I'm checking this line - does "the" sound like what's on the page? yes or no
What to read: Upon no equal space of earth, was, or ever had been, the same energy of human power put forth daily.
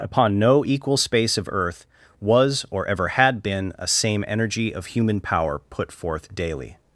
no